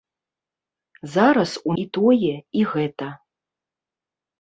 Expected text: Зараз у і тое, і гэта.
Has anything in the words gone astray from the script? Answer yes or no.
no